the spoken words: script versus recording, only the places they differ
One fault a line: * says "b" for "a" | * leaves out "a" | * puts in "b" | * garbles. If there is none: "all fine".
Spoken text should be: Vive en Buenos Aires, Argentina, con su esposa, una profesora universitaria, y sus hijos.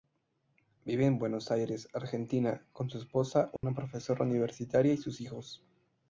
all fine